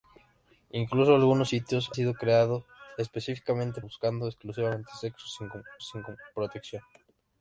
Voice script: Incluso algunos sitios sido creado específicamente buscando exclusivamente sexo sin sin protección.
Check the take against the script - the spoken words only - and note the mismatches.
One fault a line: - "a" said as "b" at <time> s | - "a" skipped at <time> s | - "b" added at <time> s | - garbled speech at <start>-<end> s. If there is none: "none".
none